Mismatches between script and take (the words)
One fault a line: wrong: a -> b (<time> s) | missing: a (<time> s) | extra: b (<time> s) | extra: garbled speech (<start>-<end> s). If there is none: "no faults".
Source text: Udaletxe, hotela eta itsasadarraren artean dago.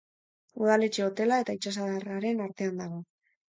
no faults